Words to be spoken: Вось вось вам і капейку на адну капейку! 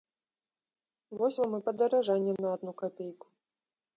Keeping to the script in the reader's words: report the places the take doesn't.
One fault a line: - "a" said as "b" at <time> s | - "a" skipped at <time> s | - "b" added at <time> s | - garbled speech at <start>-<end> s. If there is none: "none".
- "вось" skipped at 1.4 s
- "капейку" said as "падаражанне" at 1.7 s